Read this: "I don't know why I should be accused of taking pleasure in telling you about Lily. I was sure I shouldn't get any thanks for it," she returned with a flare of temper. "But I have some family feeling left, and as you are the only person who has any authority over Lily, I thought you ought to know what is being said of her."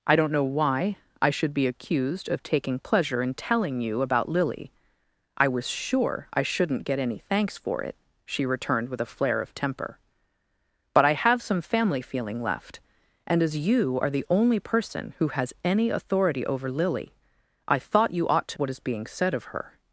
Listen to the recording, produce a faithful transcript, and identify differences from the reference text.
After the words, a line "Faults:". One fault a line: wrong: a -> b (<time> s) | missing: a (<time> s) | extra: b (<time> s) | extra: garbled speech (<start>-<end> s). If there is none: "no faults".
"I don't know why I should be accused of taking pleasure in telling you about Lily. I was sure I shouldn't get any thanks for it," she returned with a flare of temper. "But I have some family feeling left, and as you are the only person who has any authority over Lily, I thought you ought to what is being said of her."
Faults:
missing: know (18.6 s)